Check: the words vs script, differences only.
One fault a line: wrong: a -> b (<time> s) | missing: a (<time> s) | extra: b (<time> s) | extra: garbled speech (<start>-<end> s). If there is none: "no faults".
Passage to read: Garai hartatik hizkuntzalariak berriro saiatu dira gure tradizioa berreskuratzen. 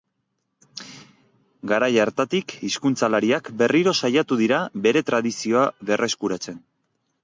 wrong: gure -> bere (4.9 s)